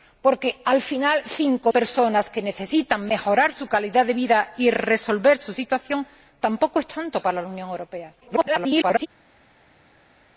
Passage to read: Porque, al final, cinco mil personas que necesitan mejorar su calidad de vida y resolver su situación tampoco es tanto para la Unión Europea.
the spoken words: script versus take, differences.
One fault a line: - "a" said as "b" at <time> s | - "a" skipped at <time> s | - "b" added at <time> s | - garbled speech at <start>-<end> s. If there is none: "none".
- "mil" skipped at 1.7 s
- garbled speech at 8.2-9.1 s